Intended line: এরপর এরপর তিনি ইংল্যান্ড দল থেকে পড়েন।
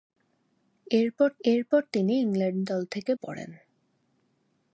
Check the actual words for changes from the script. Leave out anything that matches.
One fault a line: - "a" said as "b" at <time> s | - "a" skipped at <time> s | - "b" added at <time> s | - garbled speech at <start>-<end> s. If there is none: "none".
none